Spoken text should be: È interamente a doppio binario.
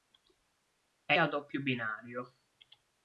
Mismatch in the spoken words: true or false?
true